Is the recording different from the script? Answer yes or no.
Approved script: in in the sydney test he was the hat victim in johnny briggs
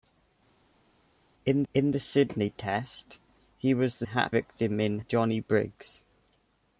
no